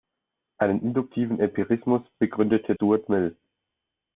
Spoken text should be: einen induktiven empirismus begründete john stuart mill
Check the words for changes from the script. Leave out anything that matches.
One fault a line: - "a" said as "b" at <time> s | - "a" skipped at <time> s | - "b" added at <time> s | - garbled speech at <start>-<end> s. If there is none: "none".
- "john" skipped at 2.7 s